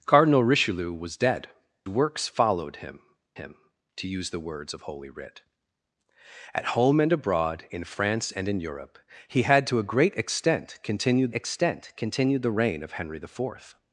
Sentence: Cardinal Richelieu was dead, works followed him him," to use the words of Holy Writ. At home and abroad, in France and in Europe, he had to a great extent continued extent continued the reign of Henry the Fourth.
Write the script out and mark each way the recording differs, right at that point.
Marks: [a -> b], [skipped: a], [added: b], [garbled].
Cardinal Richelieu was dead, works followed him him," to use the words of Holy Writ. At home and abroad, in France and in Europe, he had to a great extent continued extent continued the reign of Henry the Fourth.